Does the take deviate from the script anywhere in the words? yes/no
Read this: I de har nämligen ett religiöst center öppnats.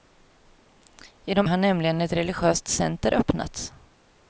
no